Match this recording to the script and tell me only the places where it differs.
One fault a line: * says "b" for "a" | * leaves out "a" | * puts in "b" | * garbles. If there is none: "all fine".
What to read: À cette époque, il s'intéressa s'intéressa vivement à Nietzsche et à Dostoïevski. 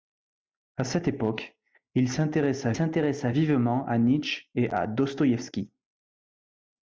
all fine